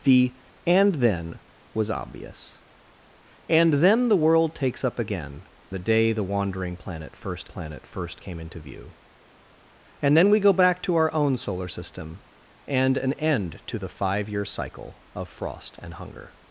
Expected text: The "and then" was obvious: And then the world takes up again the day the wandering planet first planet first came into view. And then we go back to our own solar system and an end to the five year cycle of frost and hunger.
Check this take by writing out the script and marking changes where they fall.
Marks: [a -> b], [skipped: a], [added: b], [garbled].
The "and then" was obvious: And then the world takes up again the day the wandering planet first planet first came into view. And then we go back to our own solar system and an end to the five year cycle of frost and hunger.